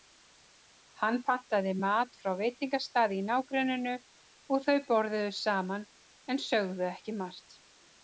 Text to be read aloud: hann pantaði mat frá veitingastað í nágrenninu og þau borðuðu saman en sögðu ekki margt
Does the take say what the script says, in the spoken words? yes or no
yes